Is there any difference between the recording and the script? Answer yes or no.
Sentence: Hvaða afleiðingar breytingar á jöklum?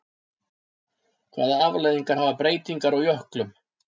yes